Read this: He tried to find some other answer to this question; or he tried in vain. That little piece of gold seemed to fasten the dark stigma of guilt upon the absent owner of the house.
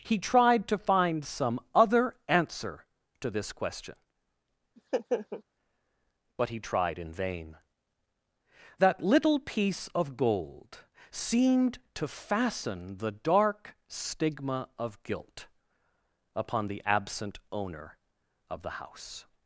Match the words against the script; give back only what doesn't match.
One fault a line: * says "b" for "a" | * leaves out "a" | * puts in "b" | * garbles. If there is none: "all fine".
* says "but" for "or"